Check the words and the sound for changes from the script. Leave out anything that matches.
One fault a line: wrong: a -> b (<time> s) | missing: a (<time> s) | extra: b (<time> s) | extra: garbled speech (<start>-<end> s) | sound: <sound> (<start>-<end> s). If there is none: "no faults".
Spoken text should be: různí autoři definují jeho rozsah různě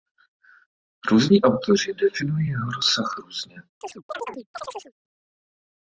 sound: chirp (3.8-4.9 s)